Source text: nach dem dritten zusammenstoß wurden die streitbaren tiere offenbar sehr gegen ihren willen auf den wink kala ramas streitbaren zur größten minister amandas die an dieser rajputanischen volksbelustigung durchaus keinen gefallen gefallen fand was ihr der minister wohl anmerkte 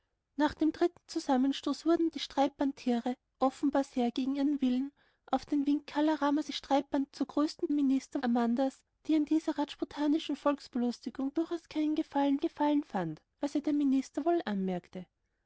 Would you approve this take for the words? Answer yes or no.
yes